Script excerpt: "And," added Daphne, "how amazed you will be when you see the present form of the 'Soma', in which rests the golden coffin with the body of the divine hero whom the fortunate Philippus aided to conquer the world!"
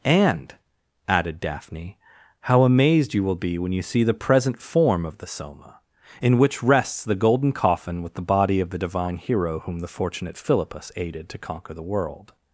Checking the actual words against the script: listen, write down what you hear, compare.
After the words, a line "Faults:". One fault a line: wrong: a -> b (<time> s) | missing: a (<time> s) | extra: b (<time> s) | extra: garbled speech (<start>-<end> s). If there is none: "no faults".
"And," added Daphne, "how amazed you will be when you see the present form of the 'Soma', in which rests the golden coffin with the body of the divine hero whom the fortunate Philippus aided to conquer the world!"
Faults:
no faults